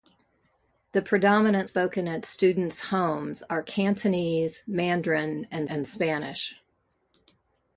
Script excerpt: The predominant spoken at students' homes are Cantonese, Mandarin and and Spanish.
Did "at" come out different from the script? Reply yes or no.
no